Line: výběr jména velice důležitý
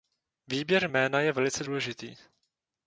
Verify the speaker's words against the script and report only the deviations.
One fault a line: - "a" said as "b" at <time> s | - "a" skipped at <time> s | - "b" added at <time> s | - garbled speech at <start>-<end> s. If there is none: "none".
- "je" added at 1.2 s